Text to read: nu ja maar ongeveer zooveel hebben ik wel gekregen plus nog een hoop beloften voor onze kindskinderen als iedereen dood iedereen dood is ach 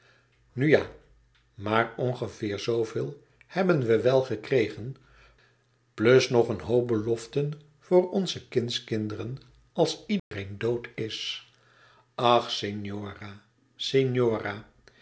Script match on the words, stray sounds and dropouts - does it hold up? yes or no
no